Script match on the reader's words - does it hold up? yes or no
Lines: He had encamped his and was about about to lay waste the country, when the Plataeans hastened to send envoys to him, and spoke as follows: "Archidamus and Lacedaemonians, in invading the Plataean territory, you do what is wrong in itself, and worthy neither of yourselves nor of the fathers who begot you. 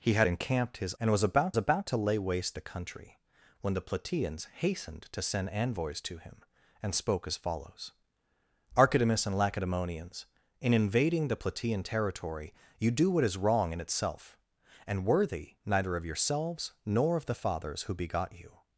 yes